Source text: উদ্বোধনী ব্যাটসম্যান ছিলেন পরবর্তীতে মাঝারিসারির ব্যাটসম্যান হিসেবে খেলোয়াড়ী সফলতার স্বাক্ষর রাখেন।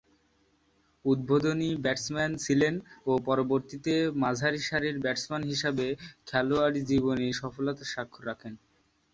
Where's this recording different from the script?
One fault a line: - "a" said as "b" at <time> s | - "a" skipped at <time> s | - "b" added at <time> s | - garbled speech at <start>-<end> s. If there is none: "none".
- "ও" added at 3.1 s
- "জীবনে" added at 6.9 s